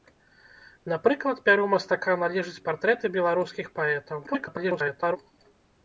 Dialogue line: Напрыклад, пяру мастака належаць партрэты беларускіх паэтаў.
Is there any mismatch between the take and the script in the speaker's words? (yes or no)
yes